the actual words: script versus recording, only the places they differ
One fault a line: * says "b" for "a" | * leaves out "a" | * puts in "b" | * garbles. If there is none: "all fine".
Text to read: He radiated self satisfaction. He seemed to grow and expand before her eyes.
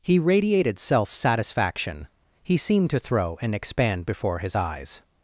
* says "throw" for "grow"
* says "his" for "her"